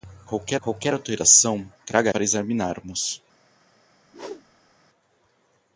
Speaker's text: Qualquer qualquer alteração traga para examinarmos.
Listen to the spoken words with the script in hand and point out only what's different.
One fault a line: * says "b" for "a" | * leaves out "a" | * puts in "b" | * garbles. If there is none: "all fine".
all fine